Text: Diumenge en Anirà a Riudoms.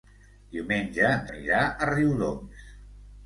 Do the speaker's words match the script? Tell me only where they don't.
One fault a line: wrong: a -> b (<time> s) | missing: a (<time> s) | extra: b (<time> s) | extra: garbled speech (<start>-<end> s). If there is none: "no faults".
no faults